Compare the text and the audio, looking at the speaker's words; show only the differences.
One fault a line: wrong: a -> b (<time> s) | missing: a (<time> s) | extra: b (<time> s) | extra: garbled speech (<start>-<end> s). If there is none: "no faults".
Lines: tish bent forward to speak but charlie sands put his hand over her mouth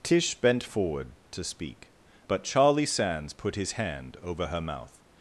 no faults